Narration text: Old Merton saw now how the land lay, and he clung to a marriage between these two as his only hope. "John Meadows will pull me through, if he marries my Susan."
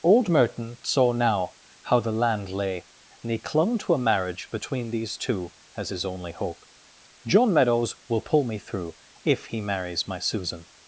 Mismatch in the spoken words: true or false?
false